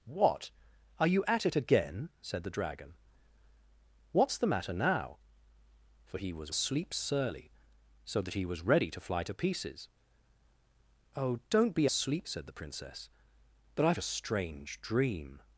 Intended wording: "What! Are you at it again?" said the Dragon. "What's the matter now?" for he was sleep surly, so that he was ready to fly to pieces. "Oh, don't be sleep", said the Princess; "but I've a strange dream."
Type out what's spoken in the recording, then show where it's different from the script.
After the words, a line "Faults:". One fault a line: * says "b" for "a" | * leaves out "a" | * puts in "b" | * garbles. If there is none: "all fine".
"What! Are you at it again?" said the Dragon. "What's the matter now?" for he was sleep surly, so that he was ready to fly to pieces. "Oh, don't be sleep", said the Princess; "but I've a strange dream."
Faults:
all fine